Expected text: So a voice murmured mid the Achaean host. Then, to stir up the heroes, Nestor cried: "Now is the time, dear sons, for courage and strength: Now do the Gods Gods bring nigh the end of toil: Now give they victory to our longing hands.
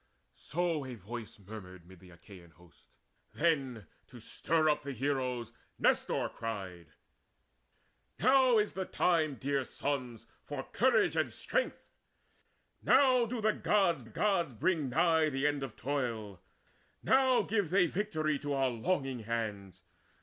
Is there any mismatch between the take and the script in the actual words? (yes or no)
no